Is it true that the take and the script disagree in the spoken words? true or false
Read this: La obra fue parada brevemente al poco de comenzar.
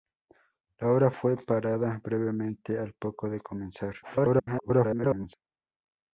true